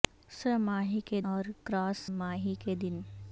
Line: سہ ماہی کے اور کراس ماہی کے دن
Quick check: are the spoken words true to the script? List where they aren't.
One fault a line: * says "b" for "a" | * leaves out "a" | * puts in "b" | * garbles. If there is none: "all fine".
all fine